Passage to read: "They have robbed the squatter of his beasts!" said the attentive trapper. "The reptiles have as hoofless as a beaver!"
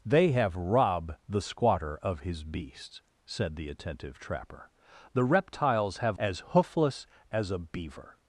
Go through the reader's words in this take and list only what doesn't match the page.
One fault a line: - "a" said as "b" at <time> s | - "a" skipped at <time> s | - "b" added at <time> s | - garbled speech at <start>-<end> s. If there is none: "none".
none